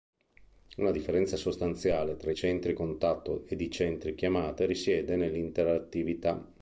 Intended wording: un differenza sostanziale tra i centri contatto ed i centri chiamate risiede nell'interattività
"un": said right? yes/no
no